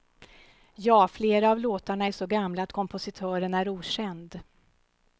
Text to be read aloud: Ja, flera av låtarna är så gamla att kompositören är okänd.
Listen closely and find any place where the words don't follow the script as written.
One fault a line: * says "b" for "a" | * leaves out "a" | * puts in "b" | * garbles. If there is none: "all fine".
all fine